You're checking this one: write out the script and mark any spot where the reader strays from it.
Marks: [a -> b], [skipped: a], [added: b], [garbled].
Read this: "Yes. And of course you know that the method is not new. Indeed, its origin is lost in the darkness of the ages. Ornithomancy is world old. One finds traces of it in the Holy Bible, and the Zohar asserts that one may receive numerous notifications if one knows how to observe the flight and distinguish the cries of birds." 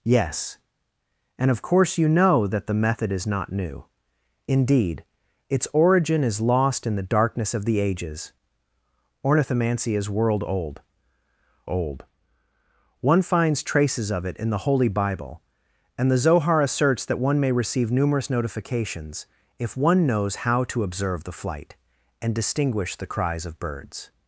"Yes. And of course you know that the method is not new. Indeed, its origin is lost in the darkness of the ages. Ornithomancy is world old. [added: old] One finds traces of it in the Holy Bible, and the Zohar asserts that one may receive numerous notifications if one knows how to observe the flight and distinguish the cries of birds."